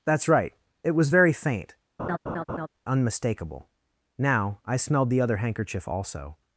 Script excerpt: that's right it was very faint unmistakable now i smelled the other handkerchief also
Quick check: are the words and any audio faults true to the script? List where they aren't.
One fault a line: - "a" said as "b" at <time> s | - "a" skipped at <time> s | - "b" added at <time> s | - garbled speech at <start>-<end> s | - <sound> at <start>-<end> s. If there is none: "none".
- laugh at 2.0-2.7 s